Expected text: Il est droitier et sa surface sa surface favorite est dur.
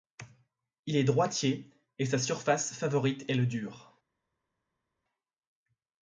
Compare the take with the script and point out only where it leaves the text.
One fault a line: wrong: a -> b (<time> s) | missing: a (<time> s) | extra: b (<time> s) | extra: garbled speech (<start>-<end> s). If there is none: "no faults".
missing: sa surface (2.7 s)
extra: le (3.3 s)